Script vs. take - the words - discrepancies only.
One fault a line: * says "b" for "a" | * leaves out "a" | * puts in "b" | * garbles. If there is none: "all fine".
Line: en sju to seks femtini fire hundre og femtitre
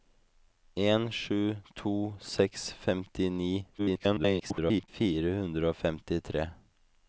* garbles